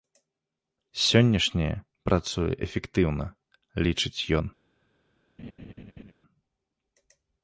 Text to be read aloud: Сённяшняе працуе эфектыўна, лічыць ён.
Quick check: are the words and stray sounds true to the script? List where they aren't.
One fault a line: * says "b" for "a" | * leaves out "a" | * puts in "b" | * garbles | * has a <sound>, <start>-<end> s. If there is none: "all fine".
* has a laugh, 5.4-6.1 s